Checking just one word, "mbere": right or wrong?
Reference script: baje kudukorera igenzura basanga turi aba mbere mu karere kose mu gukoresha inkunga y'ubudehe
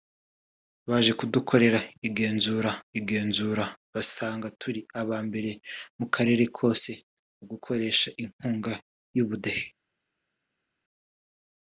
right